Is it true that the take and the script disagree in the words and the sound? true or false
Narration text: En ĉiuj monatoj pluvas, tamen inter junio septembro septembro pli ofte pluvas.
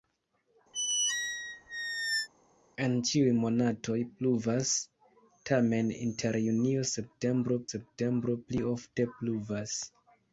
true